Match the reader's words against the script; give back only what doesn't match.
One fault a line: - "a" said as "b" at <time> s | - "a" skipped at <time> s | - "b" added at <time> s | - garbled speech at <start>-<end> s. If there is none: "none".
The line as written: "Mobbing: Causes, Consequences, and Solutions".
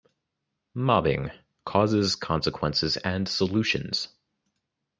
none